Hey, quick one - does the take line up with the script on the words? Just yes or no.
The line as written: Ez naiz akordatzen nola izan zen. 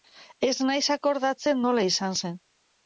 yes